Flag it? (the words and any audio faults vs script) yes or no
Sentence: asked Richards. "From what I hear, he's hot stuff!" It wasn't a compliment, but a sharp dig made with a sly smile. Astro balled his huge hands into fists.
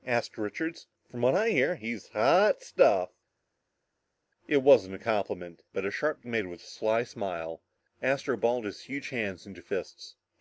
yes